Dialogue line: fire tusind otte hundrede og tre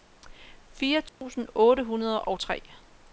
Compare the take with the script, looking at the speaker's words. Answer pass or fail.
pass